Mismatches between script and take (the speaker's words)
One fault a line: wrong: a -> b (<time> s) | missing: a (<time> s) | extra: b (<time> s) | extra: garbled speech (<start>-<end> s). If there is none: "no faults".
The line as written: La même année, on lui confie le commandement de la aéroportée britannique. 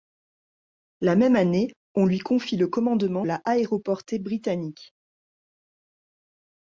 missing: de (3.3 s)